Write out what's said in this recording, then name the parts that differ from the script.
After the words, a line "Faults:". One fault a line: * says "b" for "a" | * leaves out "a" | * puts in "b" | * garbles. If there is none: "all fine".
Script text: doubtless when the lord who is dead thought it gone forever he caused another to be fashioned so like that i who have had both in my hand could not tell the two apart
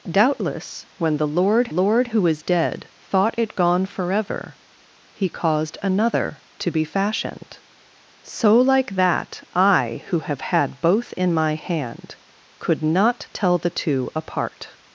doubtless when the lord lord who is dead thought it gone forever he caused another to be fashioned so like that i who have had both in my hand could not tell the two apart
Faults:
* puts in "lord"